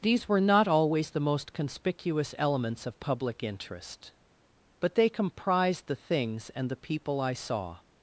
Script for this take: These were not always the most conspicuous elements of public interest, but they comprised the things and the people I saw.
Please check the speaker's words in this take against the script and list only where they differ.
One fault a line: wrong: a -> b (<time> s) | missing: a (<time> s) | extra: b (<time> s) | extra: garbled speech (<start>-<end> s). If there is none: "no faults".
no faults